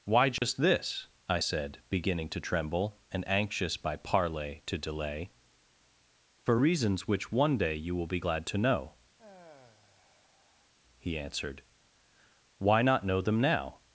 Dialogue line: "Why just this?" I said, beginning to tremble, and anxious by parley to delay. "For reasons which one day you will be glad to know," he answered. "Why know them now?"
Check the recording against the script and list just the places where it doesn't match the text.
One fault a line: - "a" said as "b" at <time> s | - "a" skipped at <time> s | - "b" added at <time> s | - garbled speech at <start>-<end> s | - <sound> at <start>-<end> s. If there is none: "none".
- dropout at 0.4-0.4 s
- sigh at 9.2-10.7 s
- "not" added at 12.8 s